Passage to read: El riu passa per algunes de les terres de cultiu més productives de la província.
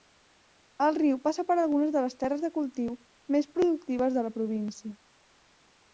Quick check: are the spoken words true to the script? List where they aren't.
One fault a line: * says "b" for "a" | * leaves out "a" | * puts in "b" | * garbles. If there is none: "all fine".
all fine